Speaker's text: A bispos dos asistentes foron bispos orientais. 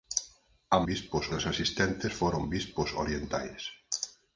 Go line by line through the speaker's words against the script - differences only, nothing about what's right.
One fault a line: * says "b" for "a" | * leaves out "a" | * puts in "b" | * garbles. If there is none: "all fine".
all fine